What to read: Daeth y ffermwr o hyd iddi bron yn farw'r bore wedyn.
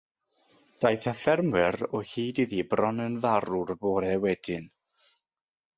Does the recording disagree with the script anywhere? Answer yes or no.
no